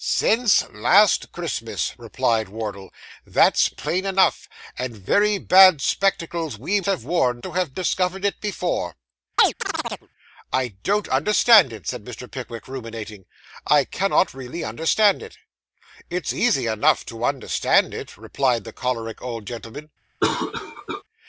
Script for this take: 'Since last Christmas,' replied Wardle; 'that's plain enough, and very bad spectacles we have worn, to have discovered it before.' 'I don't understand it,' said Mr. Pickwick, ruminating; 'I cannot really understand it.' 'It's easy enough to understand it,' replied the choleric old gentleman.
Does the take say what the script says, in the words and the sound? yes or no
no